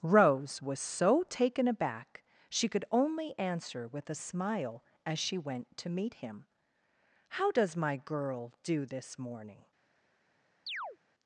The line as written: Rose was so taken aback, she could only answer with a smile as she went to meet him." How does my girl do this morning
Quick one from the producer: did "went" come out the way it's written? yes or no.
yes